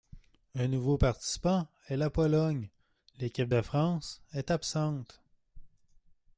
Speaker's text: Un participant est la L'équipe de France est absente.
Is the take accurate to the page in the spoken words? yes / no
no